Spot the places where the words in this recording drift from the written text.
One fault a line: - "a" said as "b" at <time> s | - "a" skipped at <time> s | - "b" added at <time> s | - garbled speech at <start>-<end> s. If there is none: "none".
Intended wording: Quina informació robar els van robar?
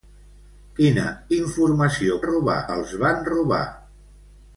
none